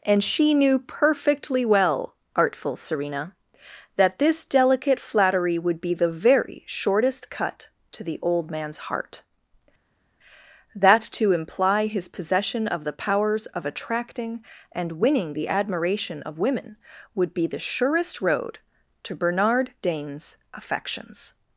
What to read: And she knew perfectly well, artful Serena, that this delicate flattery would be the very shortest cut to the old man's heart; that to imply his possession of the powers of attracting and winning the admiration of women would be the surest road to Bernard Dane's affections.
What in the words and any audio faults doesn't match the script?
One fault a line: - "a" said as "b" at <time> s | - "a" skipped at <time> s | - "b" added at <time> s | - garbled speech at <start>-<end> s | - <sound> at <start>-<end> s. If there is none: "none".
none